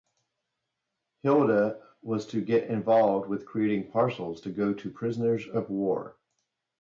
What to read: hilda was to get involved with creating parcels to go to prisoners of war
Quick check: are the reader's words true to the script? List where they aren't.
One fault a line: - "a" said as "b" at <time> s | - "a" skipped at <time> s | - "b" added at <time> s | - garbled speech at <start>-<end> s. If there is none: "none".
none